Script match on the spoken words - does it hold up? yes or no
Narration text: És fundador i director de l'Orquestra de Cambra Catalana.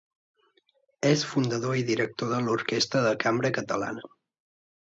yes